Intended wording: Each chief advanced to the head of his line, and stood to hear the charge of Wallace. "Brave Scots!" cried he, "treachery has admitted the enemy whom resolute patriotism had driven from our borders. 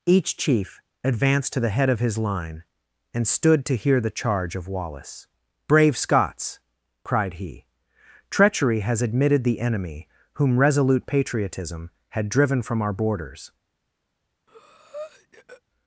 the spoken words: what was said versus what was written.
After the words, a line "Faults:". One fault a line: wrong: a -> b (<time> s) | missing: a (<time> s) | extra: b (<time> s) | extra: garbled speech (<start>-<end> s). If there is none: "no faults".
Each chief advanced to the head of his line, and stood to hear the charge of Wallace. "Brave Scots!" cried he, "treachery has admitted the enemy whom resolute patriotism had driven from our borders.
Faults:
no faults